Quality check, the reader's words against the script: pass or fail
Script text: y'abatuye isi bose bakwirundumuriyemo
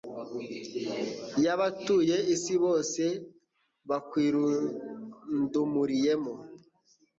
pass